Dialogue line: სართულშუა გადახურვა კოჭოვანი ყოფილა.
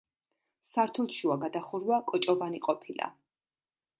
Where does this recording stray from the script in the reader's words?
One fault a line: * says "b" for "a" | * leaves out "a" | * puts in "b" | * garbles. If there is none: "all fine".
all fine